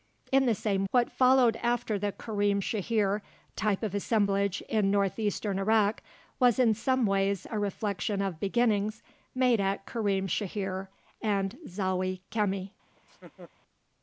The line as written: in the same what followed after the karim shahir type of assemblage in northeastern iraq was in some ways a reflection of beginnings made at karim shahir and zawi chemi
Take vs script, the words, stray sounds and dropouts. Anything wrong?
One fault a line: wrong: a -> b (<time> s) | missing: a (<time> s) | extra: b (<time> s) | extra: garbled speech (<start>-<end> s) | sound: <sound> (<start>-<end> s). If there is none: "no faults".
sound: laugh (13.0-13.5 s)